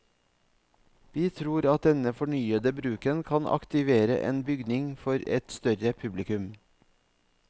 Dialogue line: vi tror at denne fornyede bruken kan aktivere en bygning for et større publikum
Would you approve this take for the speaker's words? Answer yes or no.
yes